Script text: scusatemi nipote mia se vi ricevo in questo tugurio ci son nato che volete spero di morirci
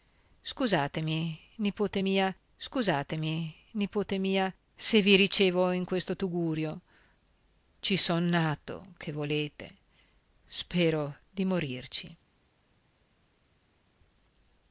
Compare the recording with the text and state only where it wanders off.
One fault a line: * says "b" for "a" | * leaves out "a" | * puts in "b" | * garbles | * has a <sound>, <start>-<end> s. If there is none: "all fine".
* puts in "scusatemi nipote mia"